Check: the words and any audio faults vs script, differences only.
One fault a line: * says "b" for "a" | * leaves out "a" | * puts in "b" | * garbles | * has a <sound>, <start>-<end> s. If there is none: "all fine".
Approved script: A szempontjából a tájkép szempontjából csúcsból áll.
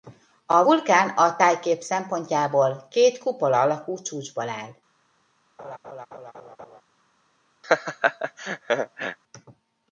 * says "vulkán" for "szempontjából"
* puts in "két kupola alakú"
* has a laugh, 5.6-6.8 s
* has a laugh, 7.6-9.2 s